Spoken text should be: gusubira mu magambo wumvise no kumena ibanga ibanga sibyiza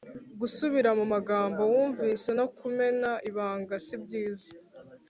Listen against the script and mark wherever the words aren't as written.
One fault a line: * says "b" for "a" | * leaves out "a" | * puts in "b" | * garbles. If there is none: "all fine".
* leaves out "ibanga"